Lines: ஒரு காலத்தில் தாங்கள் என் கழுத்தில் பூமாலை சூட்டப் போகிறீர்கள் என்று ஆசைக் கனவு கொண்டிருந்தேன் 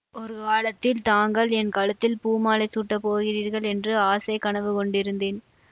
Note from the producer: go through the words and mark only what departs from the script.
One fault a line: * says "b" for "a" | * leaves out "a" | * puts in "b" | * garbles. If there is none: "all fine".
all fine